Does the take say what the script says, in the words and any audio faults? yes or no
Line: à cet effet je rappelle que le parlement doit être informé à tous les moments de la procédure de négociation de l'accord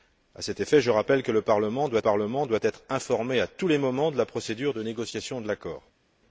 no